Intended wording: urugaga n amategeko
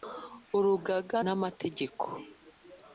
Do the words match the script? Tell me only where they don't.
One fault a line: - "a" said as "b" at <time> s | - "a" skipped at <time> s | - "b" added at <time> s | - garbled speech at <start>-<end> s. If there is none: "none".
none